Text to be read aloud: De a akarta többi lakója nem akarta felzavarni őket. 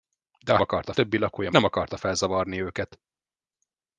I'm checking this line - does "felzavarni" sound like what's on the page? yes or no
yes